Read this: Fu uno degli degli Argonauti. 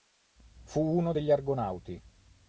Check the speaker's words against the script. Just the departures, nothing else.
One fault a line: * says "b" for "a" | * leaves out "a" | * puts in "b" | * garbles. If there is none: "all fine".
* leaves out "degli"